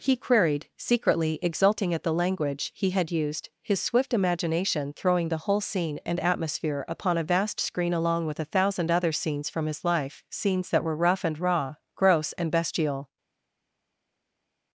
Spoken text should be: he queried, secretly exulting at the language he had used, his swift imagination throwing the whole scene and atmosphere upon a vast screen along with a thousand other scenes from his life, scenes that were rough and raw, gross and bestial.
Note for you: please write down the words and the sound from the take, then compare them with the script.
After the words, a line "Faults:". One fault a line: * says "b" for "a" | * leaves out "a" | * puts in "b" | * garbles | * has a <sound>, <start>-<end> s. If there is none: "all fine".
he queried, secretly exulting at the language he had used, his swift imagination throwing the whole scene and atmosphere upon a vast screen along with a thousand other scenes from his life, scenes that were rough and raw, gross and bestial.
Faults:
all fine